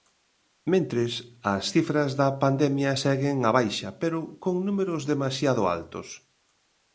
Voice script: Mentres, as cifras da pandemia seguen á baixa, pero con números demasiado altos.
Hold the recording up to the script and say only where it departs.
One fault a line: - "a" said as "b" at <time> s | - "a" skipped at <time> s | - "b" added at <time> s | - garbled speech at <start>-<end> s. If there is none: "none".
none